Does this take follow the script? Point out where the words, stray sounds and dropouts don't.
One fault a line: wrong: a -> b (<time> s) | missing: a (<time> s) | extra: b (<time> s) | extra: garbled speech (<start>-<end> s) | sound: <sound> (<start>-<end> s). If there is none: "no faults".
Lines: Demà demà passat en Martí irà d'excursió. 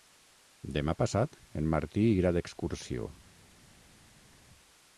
missing: demà (0.9 s)